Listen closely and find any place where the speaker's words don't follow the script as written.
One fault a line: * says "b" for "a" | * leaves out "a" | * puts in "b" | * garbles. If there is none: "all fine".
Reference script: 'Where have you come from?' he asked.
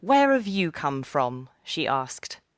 * says "she" for "he"